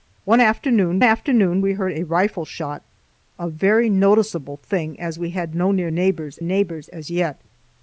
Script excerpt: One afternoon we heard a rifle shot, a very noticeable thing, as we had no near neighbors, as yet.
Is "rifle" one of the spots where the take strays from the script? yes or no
no